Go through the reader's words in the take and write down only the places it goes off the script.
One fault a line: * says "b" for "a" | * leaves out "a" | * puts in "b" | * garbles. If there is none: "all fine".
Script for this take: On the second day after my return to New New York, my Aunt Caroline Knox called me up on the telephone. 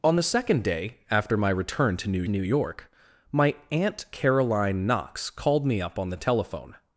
all fine